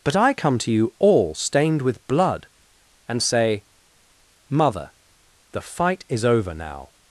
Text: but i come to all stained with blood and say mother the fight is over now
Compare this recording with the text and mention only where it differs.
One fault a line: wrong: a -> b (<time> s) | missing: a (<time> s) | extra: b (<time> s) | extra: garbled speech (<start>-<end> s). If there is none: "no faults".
extra: you (0.7 s)